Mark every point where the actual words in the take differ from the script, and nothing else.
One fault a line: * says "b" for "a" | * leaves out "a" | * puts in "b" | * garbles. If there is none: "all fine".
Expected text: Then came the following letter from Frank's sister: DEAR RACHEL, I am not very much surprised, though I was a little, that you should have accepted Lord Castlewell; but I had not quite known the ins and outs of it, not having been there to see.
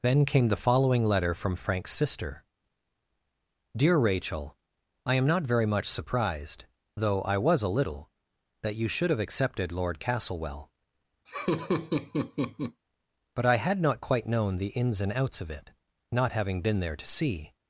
all fine